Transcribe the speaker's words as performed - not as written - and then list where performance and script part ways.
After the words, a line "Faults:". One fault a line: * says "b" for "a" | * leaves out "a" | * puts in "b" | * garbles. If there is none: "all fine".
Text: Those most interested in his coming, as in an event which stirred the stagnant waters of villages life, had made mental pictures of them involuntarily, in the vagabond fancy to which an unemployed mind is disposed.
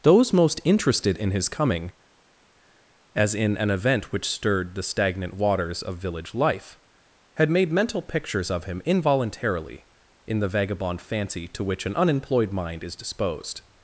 Those most interested in his coming, as in an event which stirred the stagnant waters of village life, had made mental pictures of him involuntarily, in the vagabond fancy to which an unemployed mind is disposed.
Faults:
* says "village" for "villages"
* says "him" for "them"